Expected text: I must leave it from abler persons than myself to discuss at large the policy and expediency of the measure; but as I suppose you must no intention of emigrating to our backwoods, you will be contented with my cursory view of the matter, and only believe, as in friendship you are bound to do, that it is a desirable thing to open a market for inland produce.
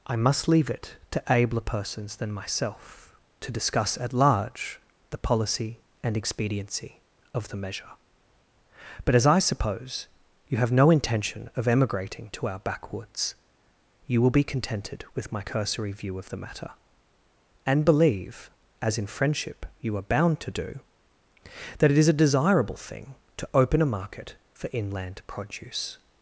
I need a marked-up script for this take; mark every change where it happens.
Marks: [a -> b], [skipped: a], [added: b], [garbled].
I must leave it [from -> to] abler persons than myself to discuss at large the policy and expediency of the measure; but as I suppose you [must -> have] no intention of emigrating to our backwoods, you will be contented with my cursory view of the matter, and [skipped: only] believe, as in friendship you are bound to do, that it is a desirable thing to open a market for inland produce.